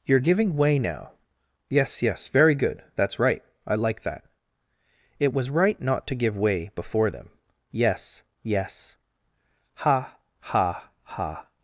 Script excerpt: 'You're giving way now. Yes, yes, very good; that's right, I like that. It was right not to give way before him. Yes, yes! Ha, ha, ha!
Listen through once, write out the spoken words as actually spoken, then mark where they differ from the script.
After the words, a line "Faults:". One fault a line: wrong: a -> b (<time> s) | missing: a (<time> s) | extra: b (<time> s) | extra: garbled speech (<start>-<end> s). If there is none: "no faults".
'You're giving way now. Yes, yes, very good; that's right, I like that. It was right not to give way before them. Yes, yes! Ha, ha, ha!
Faults:
wrong: him -> them (7.1 s)